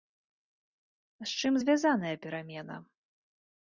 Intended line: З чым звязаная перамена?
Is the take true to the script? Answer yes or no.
yes